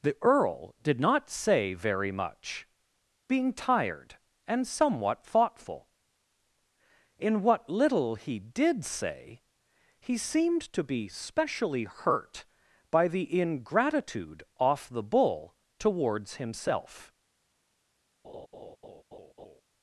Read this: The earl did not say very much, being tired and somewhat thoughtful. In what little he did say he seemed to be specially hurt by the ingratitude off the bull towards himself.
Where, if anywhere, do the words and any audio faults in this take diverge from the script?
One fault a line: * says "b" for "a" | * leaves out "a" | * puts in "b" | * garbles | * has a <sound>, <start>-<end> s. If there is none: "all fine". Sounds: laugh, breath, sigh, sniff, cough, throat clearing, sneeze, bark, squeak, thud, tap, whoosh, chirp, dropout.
* has a laugh, 18.2-19.6 s